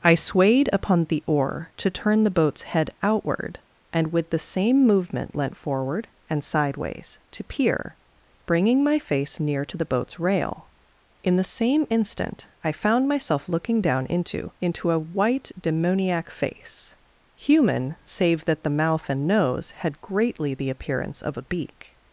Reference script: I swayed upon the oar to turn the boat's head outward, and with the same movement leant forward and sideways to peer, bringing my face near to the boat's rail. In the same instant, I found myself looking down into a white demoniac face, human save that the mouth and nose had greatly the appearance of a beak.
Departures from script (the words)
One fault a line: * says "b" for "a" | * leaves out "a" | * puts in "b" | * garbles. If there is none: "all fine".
* puts in "into"